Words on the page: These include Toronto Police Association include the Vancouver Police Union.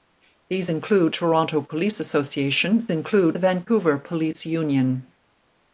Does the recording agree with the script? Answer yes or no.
yes